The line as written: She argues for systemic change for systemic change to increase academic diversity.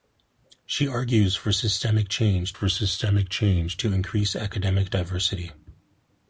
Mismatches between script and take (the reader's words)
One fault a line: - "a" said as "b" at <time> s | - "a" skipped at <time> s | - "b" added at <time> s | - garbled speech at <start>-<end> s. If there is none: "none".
none